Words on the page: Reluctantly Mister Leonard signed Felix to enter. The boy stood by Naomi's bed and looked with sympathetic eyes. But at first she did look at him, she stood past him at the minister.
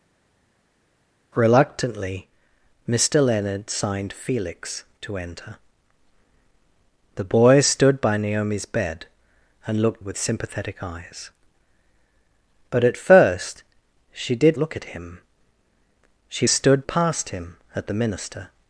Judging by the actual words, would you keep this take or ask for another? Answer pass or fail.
pass